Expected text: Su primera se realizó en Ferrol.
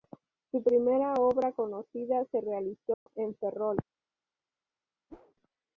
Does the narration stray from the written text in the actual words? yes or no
yes